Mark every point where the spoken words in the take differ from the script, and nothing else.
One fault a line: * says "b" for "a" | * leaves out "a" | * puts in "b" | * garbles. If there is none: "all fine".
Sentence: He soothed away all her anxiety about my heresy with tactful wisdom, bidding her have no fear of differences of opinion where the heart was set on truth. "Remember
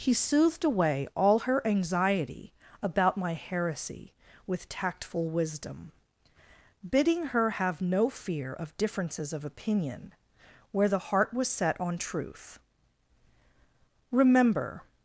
all fine